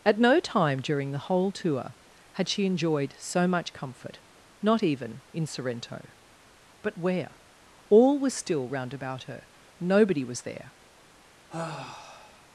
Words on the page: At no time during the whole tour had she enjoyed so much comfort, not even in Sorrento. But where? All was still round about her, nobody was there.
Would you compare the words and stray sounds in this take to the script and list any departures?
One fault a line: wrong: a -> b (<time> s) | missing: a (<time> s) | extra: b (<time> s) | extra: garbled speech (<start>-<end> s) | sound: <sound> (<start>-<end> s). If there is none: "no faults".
sound: sigh (11.5-12.5 s)